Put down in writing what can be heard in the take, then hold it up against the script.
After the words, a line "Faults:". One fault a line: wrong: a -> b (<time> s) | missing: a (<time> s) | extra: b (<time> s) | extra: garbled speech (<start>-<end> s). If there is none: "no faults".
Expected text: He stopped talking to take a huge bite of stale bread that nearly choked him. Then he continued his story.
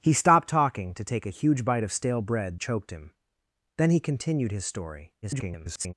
He stopped talking to take a huge bite of stale bread choked him. Then he continued his story. [garbled]
Faults:
missing: that nearly (2.6 s)
extra: garbled speech (5.2-5.9 s)